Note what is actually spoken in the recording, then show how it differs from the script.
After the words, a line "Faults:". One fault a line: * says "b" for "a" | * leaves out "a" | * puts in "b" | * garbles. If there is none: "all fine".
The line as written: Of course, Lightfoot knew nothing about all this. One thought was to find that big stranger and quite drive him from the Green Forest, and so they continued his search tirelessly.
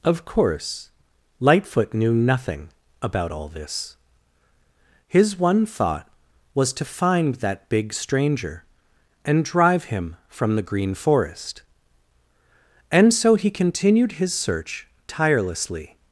Of course, Lightfoot knew nothing about all this. His one thought was to find that big stranger and drive him from the Green Forest, and so he continued his search tirelessly.
Faults:
* puts in "His"
* leaves out "quite"
* says "he" for "they"